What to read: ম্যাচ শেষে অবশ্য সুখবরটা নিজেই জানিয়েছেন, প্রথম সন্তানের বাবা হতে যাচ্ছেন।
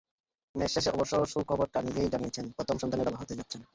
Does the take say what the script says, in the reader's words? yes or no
yes